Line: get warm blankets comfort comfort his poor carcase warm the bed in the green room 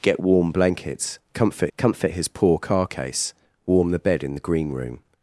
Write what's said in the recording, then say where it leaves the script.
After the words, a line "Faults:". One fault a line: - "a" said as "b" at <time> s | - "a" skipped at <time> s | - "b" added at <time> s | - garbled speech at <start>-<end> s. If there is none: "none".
get warm blankets comfort comfort his poor carcase warm the bed in the green room
Faults:
none